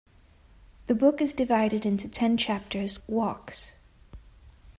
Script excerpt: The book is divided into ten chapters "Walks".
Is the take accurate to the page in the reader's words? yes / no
yes